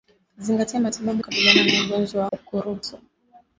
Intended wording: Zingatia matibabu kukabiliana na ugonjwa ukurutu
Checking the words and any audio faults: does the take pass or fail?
pass